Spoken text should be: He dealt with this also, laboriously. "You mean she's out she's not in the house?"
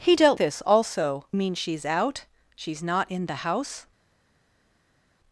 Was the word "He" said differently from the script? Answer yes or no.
no